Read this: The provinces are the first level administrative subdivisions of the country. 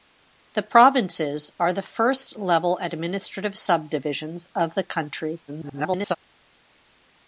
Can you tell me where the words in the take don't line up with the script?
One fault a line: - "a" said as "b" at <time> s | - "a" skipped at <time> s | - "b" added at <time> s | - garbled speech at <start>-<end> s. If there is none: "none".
- garbled speech at 5.5-6.2 s